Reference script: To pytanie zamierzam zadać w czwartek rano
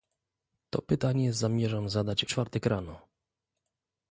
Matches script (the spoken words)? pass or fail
fail